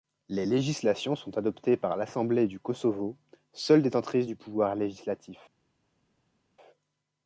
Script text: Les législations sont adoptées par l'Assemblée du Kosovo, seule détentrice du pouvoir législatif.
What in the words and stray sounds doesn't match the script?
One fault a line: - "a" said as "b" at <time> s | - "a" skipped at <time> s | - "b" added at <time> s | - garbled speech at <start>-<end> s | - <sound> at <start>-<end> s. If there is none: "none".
none